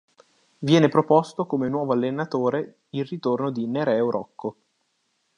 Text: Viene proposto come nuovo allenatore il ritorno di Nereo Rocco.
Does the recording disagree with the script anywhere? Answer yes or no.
no